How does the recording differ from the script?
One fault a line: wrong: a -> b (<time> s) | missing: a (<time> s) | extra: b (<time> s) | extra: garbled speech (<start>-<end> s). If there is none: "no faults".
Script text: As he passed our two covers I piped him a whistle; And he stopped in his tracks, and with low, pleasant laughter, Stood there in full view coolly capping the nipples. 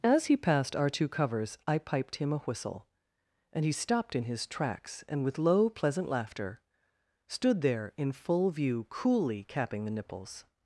no faults